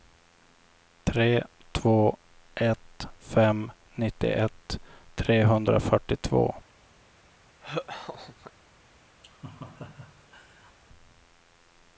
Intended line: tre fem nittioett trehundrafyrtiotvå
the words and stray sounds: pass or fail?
fail